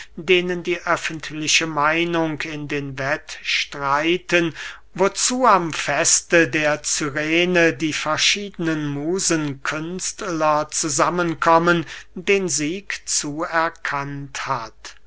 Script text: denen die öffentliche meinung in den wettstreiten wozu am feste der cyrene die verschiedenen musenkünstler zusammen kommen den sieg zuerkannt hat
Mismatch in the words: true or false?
false